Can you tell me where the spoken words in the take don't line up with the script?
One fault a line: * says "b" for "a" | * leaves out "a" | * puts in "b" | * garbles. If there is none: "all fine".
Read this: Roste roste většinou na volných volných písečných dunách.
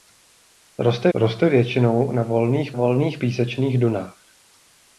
all fine